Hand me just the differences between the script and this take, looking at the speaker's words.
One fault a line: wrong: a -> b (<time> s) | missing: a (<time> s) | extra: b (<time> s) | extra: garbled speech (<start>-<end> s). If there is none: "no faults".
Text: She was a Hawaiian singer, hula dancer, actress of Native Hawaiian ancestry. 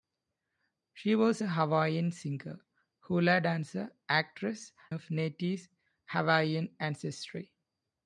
no faults